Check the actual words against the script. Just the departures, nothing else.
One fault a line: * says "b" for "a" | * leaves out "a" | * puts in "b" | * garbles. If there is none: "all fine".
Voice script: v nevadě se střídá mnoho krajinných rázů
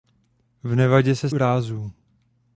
* leaves out "střídá mnoho krajinných"